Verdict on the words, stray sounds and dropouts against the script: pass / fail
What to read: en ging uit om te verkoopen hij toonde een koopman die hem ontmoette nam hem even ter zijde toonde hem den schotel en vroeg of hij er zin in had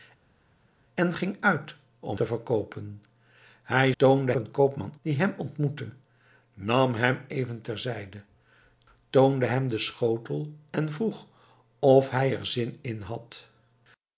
pass